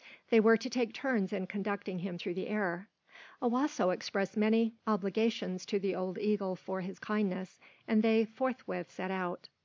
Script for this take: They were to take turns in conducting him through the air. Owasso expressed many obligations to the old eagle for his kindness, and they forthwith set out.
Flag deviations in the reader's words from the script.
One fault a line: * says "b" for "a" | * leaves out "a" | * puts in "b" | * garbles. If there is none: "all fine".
all fine